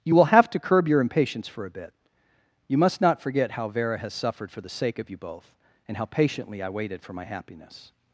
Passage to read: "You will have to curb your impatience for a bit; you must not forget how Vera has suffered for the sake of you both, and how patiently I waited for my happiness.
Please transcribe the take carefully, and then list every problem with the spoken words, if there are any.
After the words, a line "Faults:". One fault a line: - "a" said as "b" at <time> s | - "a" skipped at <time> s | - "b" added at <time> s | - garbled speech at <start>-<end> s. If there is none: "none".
"You will have to curb your impatience for a bit; you must not forget how Vera has suffered for the sake of you both, and how patiently I waited for my happiness.
Faults:
none